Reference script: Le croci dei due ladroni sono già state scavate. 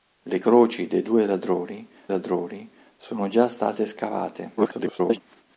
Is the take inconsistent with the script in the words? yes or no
yes